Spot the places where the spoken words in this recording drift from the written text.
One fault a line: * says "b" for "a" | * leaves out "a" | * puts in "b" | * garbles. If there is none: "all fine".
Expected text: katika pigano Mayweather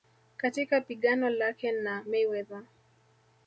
* puts in "lake na"